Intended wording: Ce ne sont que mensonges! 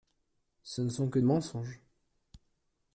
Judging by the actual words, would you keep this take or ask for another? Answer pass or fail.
pass